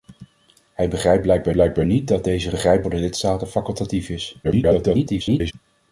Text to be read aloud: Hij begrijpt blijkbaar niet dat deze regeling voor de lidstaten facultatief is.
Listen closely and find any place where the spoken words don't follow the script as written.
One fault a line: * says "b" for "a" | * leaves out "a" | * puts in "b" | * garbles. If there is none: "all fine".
* puts in "blijkbaar"
* says "begrijpt" for "regeling"
* garbles